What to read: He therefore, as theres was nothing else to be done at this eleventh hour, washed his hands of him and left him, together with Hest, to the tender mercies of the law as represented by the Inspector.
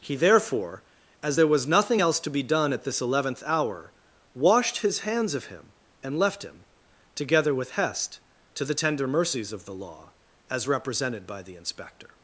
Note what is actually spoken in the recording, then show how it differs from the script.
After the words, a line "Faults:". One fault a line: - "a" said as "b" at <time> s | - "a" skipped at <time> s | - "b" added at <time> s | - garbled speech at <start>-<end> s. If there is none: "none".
He therefore, as there was nothing else to be done at this eleventh hour, washed his hands of him and left him, together with Hest, to the tender mercies of the law as represented by the Inspector.
Faults:
- "theres" said as "there" at 1.3 s